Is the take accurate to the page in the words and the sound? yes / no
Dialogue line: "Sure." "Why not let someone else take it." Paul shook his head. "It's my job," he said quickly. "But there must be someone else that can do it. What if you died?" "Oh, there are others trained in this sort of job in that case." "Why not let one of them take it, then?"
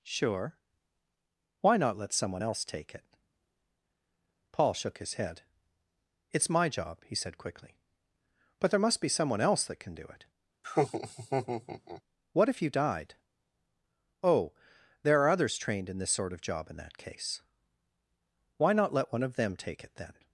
no